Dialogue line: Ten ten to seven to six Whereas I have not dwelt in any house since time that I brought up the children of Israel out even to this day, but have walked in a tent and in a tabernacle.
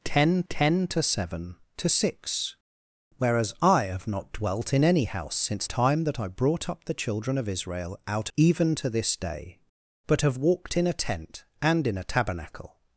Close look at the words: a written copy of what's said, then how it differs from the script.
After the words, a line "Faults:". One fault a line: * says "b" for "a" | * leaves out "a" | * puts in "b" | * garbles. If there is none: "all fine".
Ten ten to seven to six Whereas I have not dwelt in any house since time that I brought up the children of Israel out even to this day, but have walked in a tent and in a tabernacle.
Faults:
all fine